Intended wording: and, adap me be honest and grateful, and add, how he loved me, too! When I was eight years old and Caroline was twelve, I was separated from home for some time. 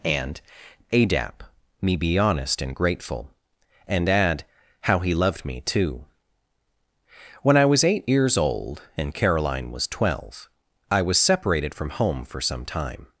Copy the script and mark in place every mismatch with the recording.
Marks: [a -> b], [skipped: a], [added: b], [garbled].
and, adap me be honest and grateful, and add, how he loved me, too! When I was eight years old and Caroline was twelve, I was separated from home for some time.